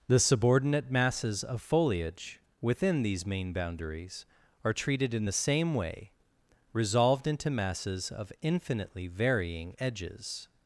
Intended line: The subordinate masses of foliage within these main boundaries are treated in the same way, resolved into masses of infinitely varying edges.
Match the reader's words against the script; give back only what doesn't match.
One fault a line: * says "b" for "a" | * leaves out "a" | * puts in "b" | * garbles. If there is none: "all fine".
all fine